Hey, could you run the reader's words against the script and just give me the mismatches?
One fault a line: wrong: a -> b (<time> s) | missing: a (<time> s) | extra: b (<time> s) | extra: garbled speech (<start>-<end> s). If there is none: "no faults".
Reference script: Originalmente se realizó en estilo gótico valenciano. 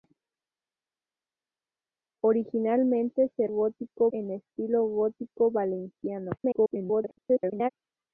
wrong: realizó -> gótico (3.5 s)
extra: garbled speech (6.4-7.7 s)